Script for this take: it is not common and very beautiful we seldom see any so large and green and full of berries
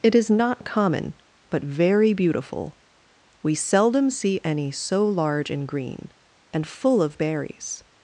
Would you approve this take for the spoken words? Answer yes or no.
no